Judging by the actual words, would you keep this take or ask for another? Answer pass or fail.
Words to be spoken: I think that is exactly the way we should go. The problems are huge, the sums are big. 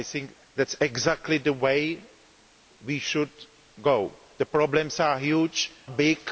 fail